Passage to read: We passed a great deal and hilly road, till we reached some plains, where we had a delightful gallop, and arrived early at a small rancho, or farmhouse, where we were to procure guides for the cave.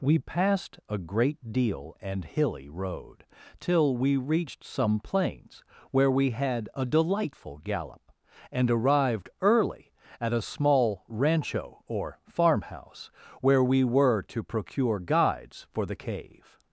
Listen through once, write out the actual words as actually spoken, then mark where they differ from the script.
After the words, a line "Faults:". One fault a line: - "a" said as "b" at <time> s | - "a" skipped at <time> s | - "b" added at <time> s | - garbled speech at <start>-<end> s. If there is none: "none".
We passed a great deal and hilly road, till we reached some plains, where we had a delightful gallop, and arrived early at a small rancho, or farmhouse, where we were to procure guides for the cave.
Faults:
none